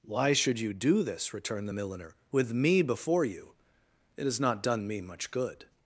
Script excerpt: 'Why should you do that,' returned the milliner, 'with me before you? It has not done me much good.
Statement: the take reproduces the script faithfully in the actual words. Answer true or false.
false